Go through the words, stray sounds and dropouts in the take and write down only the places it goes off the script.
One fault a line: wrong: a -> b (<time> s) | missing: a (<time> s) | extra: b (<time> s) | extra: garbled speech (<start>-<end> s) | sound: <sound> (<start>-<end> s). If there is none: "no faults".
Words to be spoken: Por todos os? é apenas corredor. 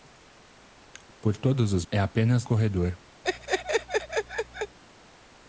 sound: laugh (3.2-4.8 s)